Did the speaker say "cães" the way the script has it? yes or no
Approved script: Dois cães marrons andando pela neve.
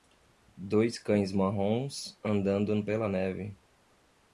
yes